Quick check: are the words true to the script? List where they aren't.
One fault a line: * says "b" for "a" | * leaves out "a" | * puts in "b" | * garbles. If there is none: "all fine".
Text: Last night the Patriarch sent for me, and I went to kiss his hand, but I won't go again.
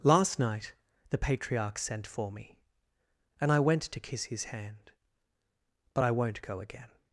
all fine